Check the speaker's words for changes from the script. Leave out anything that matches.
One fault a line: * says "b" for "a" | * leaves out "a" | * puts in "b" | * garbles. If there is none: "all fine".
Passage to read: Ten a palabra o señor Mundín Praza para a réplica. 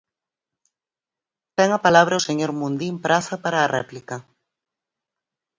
all fine